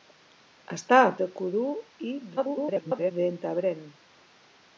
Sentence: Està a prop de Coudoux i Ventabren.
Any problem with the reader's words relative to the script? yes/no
yes